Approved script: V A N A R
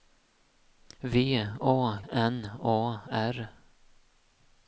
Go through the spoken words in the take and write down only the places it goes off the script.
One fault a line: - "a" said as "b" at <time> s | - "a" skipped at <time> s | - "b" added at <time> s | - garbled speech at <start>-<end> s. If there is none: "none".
none